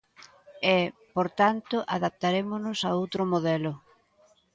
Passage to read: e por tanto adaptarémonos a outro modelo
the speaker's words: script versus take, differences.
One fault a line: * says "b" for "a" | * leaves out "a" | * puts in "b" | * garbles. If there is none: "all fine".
all fine